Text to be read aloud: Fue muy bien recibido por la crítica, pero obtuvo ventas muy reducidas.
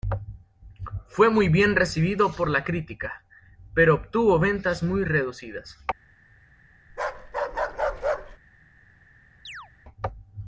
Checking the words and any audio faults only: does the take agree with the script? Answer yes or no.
no